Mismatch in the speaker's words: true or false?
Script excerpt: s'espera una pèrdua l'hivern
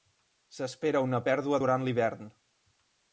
true